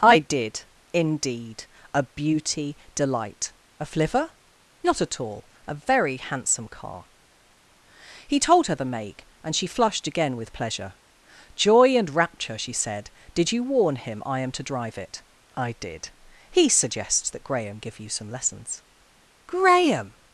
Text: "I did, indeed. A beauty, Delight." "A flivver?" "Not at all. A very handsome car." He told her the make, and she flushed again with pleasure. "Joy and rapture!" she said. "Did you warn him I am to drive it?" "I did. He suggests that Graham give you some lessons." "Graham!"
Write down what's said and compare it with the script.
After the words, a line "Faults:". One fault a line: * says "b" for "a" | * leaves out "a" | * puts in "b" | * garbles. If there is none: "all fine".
"I did, indeed. A beauty, Delight." "A flivver?" "Not at all. A very handsome car." He told her the make, and she flushed again with pleasure. "Joy and rapture!" she said. "Did you warn him I am to drive it?" "I did. He suggests that Graham give you some lessons." "Graham!"
Faults:
all fine